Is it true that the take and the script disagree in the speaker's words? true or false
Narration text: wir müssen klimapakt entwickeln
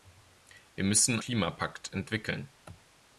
false